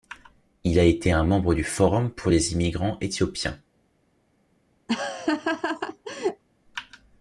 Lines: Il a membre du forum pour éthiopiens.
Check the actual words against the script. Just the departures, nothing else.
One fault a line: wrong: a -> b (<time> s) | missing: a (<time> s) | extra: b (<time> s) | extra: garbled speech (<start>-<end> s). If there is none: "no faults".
extra: été un (0.8 s)
extra: les immigrants (2.3 s)